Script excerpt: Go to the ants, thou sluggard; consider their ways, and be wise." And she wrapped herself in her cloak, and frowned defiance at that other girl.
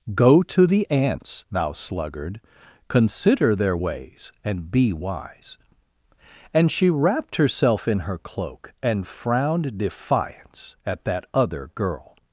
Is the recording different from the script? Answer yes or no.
no